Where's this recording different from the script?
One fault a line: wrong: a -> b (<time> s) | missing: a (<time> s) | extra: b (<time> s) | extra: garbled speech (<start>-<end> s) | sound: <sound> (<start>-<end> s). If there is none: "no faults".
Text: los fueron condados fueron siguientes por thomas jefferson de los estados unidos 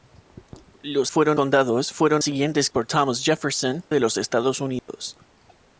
sound: dropout (4.8-4.9 s)